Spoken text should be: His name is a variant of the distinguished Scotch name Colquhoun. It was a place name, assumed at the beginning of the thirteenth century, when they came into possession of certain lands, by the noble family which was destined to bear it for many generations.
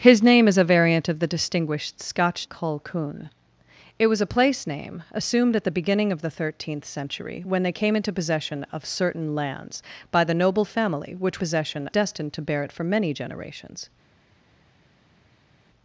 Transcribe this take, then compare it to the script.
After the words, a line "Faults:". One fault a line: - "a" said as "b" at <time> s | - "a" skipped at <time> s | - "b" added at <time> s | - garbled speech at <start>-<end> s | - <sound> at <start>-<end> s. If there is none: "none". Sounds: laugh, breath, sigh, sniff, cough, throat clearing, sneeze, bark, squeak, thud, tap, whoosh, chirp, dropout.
His name is a variant of the distinguished Scotch Colquhoun. It was a place name, assumed at the beginning of the thirteenth century, when they came into possession of certain lands, by the noble family which possession destined to bear it for many generations.
Faults:
- "name" skipped at 2.5 s
- "was" said as "possession" at 11.4 s